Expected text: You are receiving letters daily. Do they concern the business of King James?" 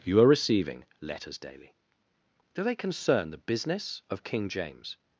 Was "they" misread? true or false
false